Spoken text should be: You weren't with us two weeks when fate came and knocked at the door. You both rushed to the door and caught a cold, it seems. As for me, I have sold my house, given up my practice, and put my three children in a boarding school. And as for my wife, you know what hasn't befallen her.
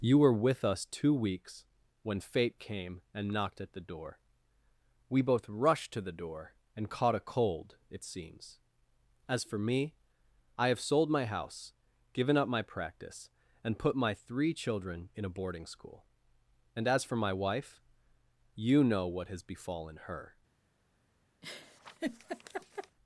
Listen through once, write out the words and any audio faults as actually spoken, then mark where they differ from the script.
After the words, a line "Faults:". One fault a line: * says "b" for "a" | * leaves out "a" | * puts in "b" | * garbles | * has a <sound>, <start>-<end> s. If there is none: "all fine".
You were with us two weeks when fate came and knocked at the door. We both rushed to the door and caught a cold, it seems. As for me, I have sold my house, given up my practice, and put my three children in a boarding school. And as for my wife, you know what has befallen her.
Faults:
* says "were" for "weren't"
* says "We" for "You"
* says "has" for "hasn't"
* has a laugh, 21.4-23.0 s